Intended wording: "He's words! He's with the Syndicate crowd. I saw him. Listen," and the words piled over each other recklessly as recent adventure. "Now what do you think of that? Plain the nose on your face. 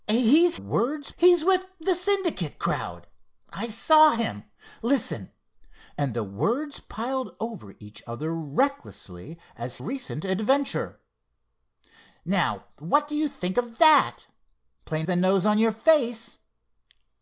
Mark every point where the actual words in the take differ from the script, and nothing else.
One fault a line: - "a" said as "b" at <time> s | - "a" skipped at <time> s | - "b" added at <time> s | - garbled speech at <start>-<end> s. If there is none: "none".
none